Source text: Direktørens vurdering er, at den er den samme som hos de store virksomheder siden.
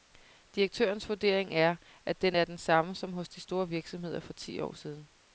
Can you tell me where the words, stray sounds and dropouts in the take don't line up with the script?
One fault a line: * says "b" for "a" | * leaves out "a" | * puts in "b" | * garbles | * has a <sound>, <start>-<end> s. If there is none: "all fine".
* puts in "for ti år"